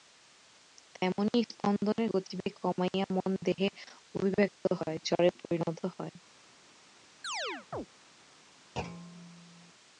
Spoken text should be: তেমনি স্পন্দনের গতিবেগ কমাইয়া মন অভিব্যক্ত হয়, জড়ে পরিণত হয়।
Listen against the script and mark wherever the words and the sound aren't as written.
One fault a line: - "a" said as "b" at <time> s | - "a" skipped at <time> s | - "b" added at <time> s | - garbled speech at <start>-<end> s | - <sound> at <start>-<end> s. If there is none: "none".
- "দেহে" added at 3.5 s
- chirp at 7.2-7.9 s
- thud at 8.8-9.7 s